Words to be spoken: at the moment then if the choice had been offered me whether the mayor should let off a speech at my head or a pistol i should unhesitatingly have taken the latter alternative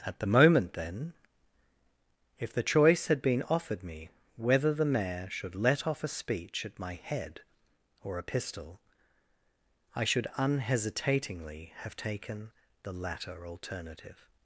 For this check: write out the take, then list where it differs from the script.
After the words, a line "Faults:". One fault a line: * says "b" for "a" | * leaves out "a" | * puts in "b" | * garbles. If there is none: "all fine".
at the moment then if the choice had been offered me whether the mayor should let off a speech at my head or a pistol i should unhesitatingly have taken the latter alternative
Faults:
all fine